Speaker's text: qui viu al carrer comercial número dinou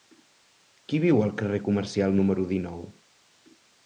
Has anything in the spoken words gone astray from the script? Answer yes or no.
no